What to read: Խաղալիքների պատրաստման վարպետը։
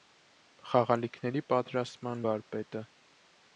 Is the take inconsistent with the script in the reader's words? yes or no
no